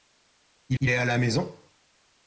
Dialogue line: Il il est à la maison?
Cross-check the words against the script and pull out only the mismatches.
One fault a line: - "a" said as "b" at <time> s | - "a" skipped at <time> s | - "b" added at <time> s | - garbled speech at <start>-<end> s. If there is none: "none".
none